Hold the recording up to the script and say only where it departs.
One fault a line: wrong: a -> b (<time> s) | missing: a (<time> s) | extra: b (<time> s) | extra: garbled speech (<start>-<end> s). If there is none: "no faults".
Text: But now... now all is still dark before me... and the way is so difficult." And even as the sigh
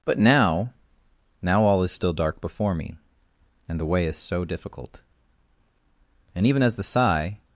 no faults